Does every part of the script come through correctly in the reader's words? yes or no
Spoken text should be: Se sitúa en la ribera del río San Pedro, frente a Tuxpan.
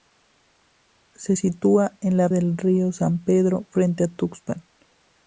no